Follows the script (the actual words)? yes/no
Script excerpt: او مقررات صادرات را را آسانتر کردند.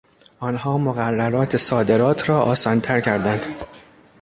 no